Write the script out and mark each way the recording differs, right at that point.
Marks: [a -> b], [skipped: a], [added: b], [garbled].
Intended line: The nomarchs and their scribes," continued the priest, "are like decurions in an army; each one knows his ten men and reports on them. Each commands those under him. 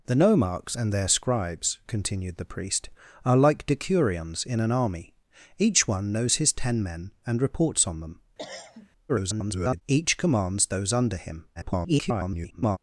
The nomarchs and their scribes," continued the priest, "are like decurions in an army; each one knows his ten men and reports on them. [garbled] Each commands those under him. [garbled]